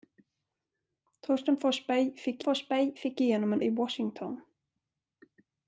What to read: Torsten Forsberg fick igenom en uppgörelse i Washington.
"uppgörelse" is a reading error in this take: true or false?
true